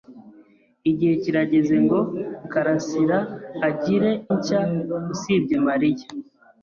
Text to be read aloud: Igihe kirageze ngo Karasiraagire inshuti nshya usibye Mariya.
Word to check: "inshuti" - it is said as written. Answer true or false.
false